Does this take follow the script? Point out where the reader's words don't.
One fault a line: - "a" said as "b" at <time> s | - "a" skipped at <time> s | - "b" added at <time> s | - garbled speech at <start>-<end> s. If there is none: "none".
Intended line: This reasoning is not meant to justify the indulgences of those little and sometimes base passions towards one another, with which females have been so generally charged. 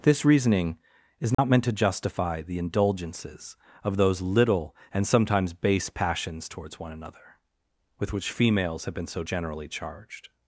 none